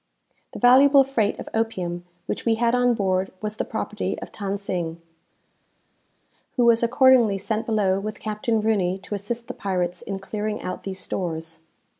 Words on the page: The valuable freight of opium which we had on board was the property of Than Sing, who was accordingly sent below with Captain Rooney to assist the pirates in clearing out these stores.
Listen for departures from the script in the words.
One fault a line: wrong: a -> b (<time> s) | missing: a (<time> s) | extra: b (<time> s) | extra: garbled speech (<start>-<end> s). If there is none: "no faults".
no faults